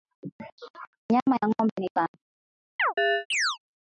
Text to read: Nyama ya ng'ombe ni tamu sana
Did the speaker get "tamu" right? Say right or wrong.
wrong